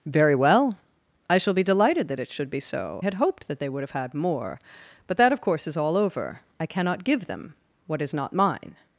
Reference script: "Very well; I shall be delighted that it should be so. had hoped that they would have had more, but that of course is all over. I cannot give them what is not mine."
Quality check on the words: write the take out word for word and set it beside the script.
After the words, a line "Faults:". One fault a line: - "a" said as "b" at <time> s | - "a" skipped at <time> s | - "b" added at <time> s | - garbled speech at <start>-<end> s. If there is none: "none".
"Very well; I shall be delighted that it should be so. had hoped that they would have had more, but that of course is all over. I cannot give them what is not mine."
Faults:
none